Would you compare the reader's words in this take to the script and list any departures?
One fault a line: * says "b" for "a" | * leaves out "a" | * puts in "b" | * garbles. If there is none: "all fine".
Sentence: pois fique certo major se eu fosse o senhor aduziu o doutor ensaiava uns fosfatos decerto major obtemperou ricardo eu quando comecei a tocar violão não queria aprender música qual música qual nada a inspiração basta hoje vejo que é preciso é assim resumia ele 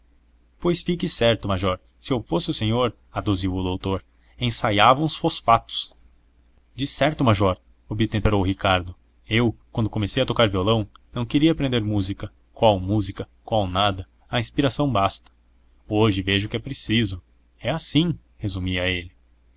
all fine